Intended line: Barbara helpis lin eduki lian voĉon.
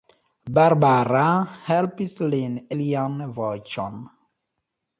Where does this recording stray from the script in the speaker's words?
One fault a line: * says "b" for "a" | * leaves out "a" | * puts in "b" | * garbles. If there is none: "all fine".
* leaves out "eduki"